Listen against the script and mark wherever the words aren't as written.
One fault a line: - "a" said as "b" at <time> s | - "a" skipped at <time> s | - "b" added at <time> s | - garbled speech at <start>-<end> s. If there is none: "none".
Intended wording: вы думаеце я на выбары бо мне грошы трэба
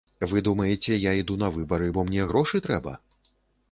- "іду" added at 1.2 s